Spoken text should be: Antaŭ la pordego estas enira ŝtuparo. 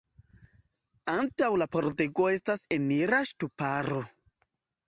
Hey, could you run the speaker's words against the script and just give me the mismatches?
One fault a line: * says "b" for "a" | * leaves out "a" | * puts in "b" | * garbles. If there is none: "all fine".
all fine